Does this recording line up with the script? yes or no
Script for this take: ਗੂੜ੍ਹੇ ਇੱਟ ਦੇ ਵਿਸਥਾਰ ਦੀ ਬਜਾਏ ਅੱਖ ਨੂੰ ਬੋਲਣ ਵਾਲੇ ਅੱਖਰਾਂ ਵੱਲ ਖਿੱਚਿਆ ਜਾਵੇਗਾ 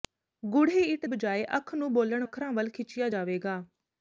no